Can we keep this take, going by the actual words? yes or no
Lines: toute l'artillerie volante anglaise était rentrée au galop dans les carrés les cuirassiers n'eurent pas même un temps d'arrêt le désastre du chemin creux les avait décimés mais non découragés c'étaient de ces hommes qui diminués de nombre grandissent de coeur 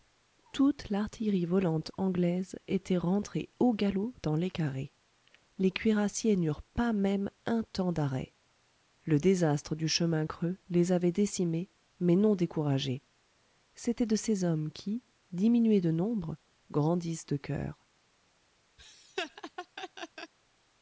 yes